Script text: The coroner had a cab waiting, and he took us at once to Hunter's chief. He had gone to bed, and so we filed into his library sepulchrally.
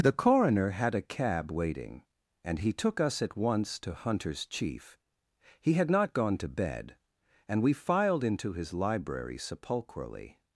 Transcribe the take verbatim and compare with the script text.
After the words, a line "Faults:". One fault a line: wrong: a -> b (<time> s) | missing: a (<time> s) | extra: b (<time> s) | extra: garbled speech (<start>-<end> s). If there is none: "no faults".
The coroner had a cab waiting, and he took us at once to Hunter's chief. He had not gone to bed, and we filed into his library sepulchrally.
Faults:
extra: not (5.9 s)
missing: so (7.6 s)